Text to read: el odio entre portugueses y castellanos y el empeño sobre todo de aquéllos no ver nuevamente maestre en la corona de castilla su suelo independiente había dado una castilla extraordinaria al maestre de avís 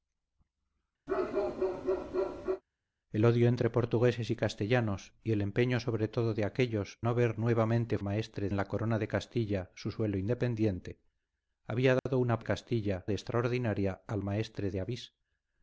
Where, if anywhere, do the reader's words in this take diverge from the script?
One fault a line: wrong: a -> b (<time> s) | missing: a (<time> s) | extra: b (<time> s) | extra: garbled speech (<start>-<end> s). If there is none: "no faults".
no faults